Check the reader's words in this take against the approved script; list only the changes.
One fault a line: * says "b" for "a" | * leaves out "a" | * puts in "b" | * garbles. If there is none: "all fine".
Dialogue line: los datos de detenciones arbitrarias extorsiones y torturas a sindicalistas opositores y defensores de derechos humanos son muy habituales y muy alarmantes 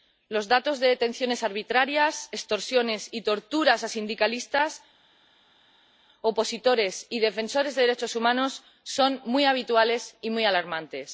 all fine